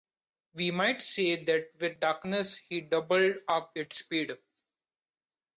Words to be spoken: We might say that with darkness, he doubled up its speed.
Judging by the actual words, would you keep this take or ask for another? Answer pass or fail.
pass